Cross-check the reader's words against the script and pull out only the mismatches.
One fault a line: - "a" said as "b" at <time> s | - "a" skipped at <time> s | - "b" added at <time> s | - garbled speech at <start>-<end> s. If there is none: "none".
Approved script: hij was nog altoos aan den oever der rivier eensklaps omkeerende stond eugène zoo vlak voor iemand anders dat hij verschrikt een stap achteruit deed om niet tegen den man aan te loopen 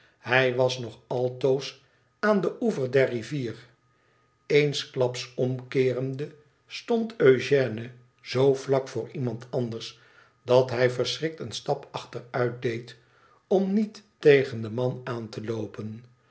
none